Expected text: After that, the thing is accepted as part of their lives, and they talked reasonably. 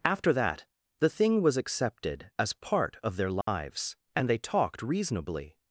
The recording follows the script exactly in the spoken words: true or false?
false